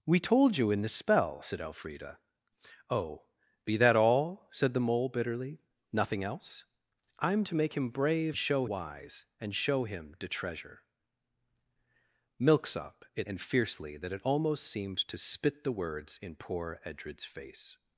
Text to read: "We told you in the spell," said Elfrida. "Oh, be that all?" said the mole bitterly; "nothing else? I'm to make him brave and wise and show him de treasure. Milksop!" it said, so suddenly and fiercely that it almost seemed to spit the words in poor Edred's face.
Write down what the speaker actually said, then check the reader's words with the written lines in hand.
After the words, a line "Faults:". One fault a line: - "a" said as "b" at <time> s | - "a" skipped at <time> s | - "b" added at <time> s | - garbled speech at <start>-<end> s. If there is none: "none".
"We told you in the spell," said Elfrida. "Oh, be that all?" said the mole bitterly; "nothing else? I'm to make him brave show wise and show him de treasure. Milksop!" it and fiercely that it almost seemed to spit the words in poor Edred's face.
Faults:
- "and" said as "show" at 8.3 s
- "said so suddenly" skipped at 13.3 s